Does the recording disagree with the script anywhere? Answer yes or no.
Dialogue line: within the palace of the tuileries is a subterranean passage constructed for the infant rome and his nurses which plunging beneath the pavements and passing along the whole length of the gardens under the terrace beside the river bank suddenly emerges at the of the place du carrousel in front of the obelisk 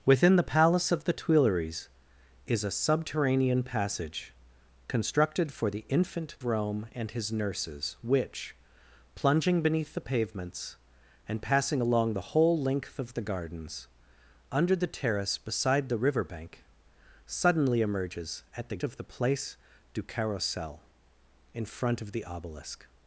no